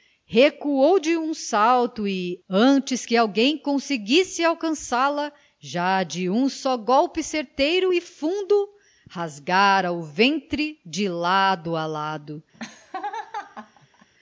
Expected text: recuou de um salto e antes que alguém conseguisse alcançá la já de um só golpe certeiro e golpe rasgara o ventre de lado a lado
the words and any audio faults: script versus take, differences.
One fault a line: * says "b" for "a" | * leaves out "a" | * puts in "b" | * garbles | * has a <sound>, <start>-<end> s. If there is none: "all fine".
* says "fundo" for "golpe"
* has a laugh, 12.5-14.1 s